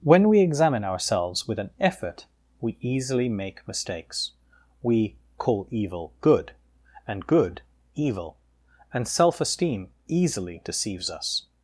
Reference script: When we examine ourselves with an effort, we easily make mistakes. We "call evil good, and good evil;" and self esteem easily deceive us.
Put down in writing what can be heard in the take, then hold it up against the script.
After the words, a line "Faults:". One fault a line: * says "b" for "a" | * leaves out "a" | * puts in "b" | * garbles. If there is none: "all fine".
When we examine ourselves with an effort, we easily make mistakes. We "call evil good, and good evil;" and self esteem easily deceives us.
Faults:
* says "deceives" for "deceive"